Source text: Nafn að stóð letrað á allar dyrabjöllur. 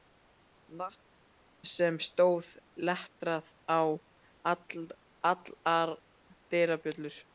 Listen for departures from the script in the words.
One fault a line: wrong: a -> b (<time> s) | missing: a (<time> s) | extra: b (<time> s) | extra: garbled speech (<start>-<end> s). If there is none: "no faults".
wrong: að -> sem (1.7 s)